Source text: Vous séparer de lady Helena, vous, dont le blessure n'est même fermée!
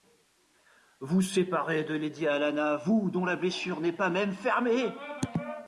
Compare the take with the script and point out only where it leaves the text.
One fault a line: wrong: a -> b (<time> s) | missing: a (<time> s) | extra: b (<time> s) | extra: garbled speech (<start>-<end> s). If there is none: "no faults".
wrong: le -> la (3.2 s)
extra: pas (3.9 s)